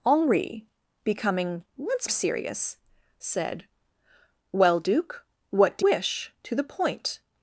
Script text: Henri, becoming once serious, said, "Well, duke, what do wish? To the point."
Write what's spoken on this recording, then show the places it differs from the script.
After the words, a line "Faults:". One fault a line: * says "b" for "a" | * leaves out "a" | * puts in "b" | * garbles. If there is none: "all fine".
Henri, becoming once serious, said, "Well, duke, what do wish? To the point."
Faults:
all fine